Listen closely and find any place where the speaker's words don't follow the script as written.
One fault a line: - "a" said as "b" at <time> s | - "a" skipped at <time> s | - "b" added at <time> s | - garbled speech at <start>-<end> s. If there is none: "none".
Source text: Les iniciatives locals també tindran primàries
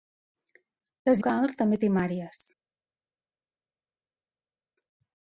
- "iniciatives" skipped at 1.2 s
- "tindran" skipped at 1.8 s